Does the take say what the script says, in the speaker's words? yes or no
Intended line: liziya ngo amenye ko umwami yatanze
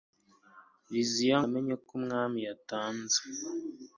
no